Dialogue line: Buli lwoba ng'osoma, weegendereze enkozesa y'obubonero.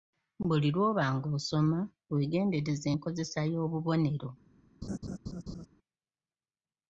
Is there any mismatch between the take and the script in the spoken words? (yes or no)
no